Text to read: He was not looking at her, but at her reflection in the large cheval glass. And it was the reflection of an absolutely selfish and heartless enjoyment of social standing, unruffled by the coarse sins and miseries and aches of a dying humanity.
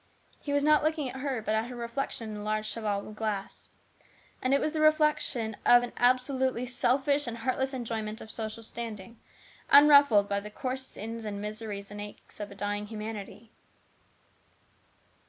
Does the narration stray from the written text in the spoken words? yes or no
no